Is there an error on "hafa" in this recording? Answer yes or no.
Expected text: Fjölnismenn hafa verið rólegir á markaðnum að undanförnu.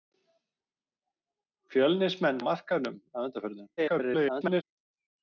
yes